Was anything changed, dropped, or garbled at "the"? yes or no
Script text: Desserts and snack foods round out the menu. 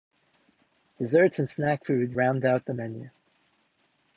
no